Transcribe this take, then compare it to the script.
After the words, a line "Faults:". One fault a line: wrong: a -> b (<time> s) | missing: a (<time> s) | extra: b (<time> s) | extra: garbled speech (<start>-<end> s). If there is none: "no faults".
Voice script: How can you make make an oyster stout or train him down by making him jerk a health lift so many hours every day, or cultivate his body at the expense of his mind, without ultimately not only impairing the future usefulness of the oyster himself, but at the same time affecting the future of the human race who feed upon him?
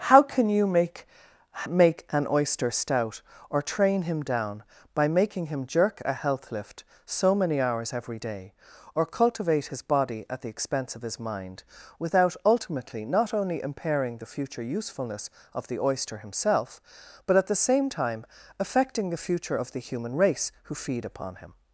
How can you make make an oyster stout or train him down by making him jerk a health lift so many hours every day, or cultivate his body at the expense of his mind, without ultimately not only impairing the future usefulness of the oyster himself, but at the same time affecting the future of the human race who feed upon him?
Faults:
no faults